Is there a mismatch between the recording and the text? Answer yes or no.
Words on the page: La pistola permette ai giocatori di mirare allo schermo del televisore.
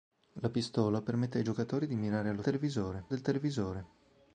yes